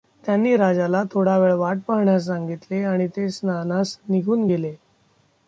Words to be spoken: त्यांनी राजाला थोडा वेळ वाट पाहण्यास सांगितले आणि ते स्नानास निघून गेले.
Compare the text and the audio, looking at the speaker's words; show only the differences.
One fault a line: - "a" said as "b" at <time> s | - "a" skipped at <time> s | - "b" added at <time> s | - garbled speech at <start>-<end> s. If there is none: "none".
none